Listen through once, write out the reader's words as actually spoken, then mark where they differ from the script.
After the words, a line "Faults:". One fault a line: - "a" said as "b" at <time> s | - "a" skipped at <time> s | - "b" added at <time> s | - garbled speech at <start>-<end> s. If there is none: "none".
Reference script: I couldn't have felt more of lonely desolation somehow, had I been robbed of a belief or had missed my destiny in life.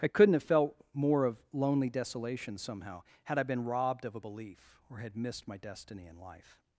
I couldn't have felt more of lonely desolation somehow, had I been robbed of a belief or had missed my destiny in life.
Faults:
none